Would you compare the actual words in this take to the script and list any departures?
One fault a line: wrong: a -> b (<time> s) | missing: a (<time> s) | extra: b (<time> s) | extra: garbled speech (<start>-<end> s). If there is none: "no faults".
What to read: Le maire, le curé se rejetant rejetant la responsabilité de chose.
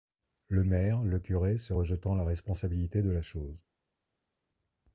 missing: rejetant (2.1 s)
extra: la (3.1 s)